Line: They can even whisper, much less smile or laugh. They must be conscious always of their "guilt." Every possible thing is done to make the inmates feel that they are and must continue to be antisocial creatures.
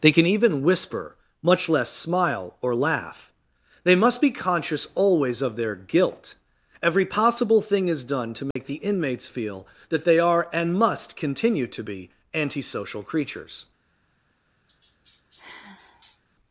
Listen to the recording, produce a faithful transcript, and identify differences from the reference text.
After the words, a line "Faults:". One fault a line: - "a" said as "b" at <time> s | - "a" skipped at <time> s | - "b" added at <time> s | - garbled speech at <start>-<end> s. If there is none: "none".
They can even whisper, much less smile or laugh. They must be conscious always of their "guilt." Every possible thing is done to make the inmates feel that they are and must continue to be antisocial creatures.
Faults:
none